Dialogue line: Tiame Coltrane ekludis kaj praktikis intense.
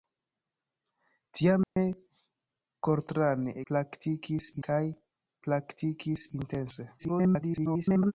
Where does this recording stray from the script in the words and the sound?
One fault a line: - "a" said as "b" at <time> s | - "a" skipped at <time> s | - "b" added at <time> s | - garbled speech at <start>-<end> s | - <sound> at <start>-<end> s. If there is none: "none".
- dropout at 1.6-1.8 s
- "ekludis" said as "praktikis" at 3.7 s
- garbled speech at 7.0-8.1 s